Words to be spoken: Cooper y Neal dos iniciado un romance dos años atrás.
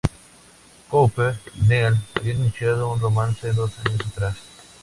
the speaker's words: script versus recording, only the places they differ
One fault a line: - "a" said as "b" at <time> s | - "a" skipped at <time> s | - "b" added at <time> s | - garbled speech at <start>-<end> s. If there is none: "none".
- "dos" said as "habían" at 2.2 s